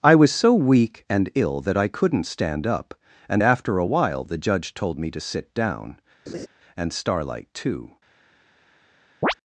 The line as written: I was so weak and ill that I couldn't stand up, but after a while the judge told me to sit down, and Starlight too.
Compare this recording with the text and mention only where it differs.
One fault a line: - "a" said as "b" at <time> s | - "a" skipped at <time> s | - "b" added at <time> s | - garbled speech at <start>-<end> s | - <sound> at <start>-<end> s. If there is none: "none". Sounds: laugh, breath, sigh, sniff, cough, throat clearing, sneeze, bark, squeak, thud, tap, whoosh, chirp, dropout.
- "but" said as "and" at 3.3 s
- laugh at 6.3-6.5 s
- chirp at 9.2-9.3 s